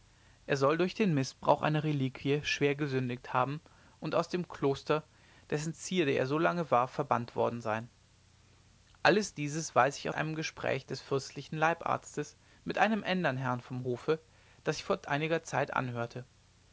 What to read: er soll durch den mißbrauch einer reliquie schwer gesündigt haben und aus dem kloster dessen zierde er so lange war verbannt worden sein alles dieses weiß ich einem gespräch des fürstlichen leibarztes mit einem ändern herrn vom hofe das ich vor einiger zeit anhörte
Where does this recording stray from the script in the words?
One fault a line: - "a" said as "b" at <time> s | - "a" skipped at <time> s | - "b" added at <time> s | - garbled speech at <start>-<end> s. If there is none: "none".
none